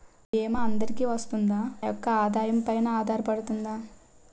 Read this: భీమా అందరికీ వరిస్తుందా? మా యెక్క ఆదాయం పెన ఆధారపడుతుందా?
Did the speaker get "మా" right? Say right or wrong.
wrong